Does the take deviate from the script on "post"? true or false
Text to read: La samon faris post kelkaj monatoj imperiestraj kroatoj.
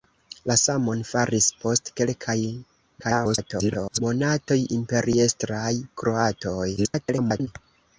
false